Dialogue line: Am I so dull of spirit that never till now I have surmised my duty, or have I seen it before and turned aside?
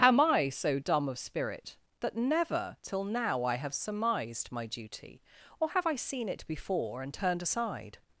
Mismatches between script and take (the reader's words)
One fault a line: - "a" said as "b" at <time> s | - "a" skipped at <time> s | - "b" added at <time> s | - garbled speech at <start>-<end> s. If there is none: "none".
- "dull" said as "dumb" at 0.8 s